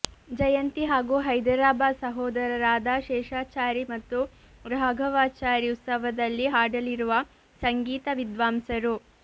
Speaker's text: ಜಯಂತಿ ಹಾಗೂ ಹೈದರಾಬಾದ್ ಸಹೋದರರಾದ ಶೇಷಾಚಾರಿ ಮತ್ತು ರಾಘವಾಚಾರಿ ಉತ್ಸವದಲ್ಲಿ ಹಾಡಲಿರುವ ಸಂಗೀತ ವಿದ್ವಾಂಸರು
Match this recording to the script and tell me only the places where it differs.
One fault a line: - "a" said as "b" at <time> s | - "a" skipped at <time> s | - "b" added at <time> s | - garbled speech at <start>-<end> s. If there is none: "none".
none